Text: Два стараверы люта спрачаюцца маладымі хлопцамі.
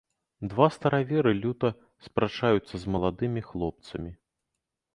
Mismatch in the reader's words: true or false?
true